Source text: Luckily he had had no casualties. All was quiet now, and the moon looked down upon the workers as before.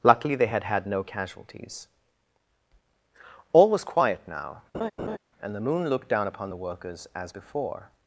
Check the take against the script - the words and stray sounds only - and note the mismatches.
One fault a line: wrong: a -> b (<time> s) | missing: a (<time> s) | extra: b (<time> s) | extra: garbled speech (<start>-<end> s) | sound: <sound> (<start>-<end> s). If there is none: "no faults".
wrong: he -> they (0.3 s)
sound: laugh (4.7-5.2 s)